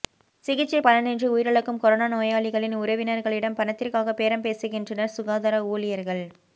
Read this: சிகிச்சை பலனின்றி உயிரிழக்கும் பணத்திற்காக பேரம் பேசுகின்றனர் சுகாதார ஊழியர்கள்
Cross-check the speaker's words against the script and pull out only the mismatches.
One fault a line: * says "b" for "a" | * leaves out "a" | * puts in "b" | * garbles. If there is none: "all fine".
* puts in "கொரோனா நோயாளிகளின் உறவினர்களிடம்"